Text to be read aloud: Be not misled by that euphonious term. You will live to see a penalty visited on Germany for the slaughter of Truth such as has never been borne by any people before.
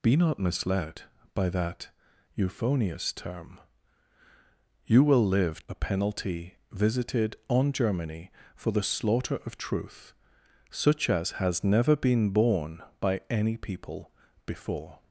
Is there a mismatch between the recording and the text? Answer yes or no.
yes